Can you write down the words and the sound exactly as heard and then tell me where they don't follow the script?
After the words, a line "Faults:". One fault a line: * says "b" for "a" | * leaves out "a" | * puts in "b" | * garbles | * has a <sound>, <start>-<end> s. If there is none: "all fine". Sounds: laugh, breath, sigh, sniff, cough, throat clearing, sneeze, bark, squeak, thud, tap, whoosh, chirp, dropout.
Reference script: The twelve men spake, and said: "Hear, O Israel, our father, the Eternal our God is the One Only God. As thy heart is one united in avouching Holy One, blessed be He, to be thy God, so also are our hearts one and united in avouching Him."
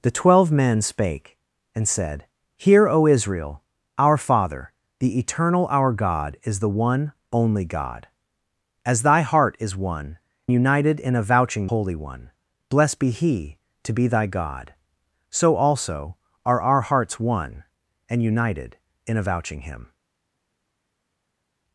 The twelve men spake, and said: "Hear, O Israel, our father, the Eternal our God is the One Only God. As thy heart is one united in avouching Holy One, blessed be He, to be thy God, so also are our hearts one and united in avouching Him."
Faults:
all fine